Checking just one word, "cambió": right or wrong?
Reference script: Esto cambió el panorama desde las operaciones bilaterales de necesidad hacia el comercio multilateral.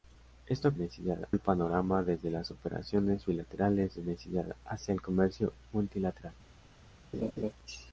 wrong